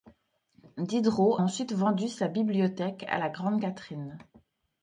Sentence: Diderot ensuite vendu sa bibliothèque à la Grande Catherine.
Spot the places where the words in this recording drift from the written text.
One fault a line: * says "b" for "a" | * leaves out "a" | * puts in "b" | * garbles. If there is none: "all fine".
all fine